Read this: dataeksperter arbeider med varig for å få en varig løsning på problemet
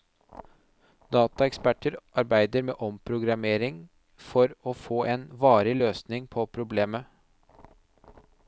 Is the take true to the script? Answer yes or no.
no